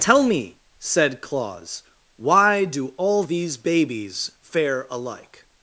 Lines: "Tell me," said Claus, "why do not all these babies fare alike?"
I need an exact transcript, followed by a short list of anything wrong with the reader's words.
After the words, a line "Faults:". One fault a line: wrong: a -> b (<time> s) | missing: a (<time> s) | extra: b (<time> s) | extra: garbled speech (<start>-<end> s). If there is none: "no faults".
"Tell me," said Claus, "why do all these babies fare alike?"
Faults:
missing: not (2.9 s)